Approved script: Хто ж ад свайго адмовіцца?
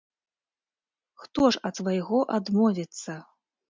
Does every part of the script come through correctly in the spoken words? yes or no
yes